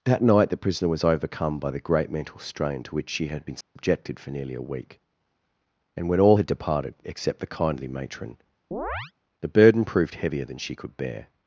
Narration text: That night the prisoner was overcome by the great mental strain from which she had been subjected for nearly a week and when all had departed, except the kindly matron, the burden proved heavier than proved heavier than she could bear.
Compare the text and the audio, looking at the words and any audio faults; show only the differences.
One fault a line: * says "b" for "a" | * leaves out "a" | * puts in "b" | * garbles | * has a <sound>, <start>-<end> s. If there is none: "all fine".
* says "to" for "from"
* has a dropout, 3.6-3.8 s
* has a chirp, 8.7-9.1 s
* leaves out "proved heavier than"